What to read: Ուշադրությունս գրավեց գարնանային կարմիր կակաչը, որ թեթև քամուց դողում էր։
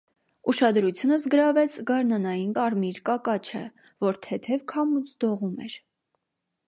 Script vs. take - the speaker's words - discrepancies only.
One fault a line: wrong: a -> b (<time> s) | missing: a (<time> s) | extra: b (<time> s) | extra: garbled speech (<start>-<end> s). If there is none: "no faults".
no faults